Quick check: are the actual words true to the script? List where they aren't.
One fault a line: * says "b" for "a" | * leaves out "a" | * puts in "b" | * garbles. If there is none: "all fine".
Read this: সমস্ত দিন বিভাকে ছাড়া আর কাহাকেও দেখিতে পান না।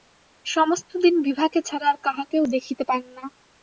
all fine